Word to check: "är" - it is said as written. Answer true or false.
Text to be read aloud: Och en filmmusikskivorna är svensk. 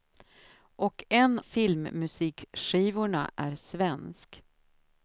true